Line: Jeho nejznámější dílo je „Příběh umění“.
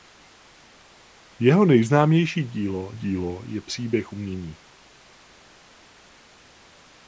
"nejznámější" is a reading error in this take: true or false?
false